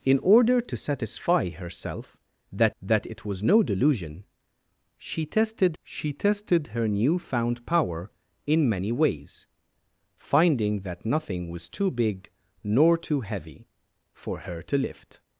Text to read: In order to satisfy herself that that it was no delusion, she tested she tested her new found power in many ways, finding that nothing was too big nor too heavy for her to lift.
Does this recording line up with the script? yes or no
yes